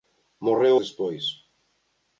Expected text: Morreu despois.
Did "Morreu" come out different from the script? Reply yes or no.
no